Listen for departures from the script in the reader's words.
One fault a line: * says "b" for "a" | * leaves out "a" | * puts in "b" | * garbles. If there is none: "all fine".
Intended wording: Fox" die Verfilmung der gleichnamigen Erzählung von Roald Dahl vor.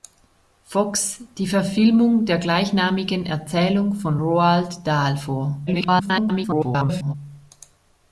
* garbles